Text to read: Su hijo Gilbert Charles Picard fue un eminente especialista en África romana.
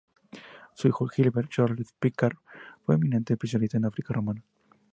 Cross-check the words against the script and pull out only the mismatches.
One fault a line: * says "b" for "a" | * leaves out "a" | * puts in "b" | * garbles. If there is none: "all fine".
all fine